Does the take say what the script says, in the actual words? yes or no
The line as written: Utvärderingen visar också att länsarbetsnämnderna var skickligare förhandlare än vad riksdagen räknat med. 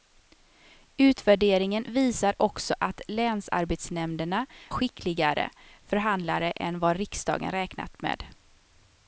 no